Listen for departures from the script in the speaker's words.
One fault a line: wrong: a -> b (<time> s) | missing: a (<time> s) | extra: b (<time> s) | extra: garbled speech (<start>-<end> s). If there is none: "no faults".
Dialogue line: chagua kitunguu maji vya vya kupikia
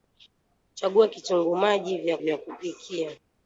no faults